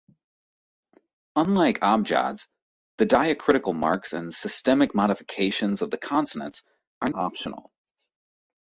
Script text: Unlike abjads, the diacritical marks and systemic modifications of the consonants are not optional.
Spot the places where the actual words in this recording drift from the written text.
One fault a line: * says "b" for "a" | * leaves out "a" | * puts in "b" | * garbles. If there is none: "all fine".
* leaves out "not"